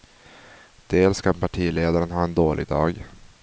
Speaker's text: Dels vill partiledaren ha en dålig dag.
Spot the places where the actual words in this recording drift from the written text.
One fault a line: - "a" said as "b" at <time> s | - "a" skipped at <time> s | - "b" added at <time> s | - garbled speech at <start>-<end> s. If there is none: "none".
- "vill" said as "kan" at 1.2 s